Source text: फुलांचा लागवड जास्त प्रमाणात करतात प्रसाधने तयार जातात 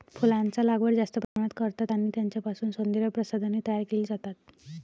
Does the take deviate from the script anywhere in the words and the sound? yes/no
yes